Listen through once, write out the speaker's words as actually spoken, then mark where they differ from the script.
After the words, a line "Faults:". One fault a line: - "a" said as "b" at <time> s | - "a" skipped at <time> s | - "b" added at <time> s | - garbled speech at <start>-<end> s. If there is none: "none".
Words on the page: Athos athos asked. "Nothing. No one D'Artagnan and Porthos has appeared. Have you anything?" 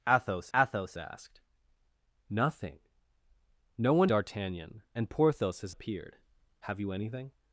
Athos athos asked. "Nothing. No one D'Artagnan and Porthos has appeared. Have you anything?"
Faults:
none